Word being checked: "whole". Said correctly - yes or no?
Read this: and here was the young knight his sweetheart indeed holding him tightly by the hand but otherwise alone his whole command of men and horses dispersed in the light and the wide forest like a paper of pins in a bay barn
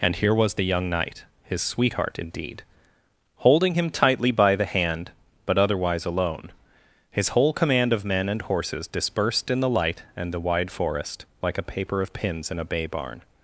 yes